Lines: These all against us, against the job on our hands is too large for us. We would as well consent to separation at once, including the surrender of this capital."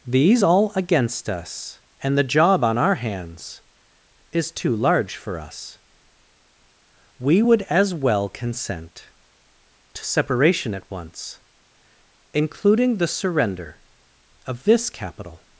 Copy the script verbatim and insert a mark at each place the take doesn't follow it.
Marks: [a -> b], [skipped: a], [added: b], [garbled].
These all against us, [against -> and] the job on our hands is too large for us. We would as well consent to separation at once, including the surrender of this capital."